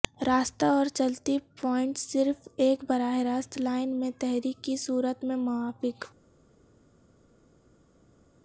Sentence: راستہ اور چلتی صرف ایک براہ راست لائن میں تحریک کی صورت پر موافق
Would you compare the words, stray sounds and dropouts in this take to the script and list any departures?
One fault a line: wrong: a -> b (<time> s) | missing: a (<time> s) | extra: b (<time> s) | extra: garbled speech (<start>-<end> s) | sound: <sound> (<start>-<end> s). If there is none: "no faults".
extra: پوائنٹس (1.6 s)
wrong: پر -> میں (5.2 s)